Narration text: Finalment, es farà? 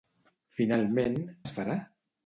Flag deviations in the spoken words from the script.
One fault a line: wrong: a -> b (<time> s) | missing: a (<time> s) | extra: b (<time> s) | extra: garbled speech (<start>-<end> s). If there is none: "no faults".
no faults